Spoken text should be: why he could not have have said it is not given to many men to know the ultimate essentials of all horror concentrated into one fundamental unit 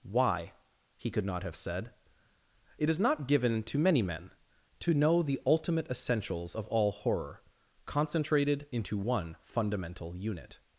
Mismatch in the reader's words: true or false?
true